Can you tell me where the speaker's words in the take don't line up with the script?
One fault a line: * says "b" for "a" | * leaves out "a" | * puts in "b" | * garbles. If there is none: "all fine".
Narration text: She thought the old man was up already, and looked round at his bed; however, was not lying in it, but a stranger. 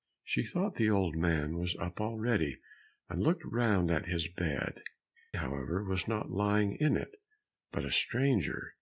all fine